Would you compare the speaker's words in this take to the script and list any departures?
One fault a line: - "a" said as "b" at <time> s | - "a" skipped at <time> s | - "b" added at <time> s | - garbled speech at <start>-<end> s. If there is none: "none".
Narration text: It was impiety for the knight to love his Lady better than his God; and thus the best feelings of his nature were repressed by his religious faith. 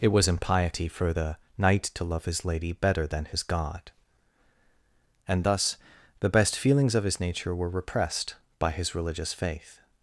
none